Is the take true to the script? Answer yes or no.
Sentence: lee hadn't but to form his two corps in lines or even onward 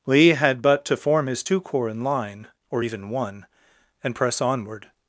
no